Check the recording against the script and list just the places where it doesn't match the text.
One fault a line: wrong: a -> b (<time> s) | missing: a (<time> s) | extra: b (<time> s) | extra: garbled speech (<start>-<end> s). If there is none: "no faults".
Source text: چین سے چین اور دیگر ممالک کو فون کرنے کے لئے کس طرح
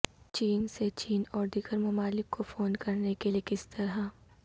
no faults